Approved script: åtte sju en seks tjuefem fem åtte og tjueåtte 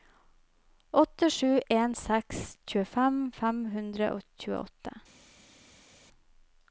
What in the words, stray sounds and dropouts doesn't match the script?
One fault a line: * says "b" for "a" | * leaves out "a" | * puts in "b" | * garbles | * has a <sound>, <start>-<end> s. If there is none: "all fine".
* says "hundre" for "åtte"